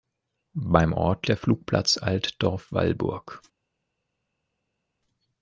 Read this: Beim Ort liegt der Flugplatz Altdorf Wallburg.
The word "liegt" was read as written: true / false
false